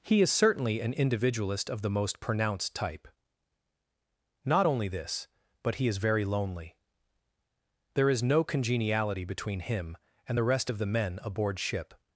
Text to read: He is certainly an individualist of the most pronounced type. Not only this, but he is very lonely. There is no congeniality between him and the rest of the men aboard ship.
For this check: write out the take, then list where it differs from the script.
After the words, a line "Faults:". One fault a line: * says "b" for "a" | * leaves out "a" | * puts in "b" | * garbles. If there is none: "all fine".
He is certainly an individualist of the most pronounced type. Not only this, but he is very lonely. There is no congeniality between him and the rest of the men aboard ship.
Faults:
all fine